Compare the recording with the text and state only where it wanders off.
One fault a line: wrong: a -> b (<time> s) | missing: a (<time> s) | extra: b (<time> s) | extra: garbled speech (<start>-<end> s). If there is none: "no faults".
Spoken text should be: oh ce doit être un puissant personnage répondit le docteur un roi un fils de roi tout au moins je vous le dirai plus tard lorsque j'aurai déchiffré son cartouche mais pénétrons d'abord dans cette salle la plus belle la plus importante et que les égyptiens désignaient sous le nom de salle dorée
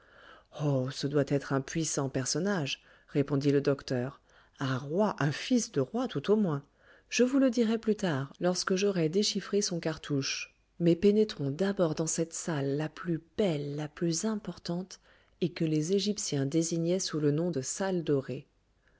no faults